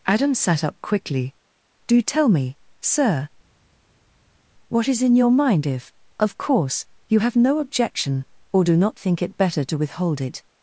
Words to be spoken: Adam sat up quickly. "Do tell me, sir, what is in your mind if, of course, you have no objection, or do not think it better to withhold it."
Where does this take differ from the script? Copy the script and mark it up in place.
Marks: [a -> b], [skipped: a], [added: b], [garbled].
Adam sat up quickly. "Do tell me, sir, what is in your mind if, of course, you have no objection, or do not think it better to withhold it."